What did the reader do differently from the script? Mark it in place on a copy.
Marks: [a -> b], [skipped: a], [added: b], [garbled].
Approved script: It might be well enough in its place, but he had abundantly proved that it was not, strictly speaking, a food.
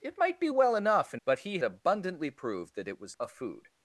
It might be well enough in [skipped: its place,] but he [skipped: had] abundantly proved that it was [skipped: not, strictly speaking,] a food.